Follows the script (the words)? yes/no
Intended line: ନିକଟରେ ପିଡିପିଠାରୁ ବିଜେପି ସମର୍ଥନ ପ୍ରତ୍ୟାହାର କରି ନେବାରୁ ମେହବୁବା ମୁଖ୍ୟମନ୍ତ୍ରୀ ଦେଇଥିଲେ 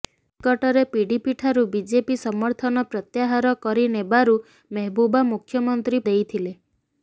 yes